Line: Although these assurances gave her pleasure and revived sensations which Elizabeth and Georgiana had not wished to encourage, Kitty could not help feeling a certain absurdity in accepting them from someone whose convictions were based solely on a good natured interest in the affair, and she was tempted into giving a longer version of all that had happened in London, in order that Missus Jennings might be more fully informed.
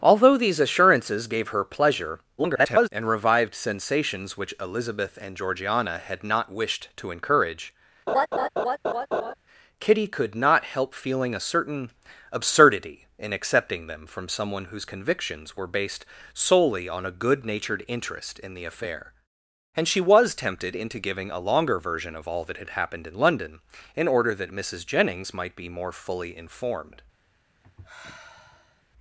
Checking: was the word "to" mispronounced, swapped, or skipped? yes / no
no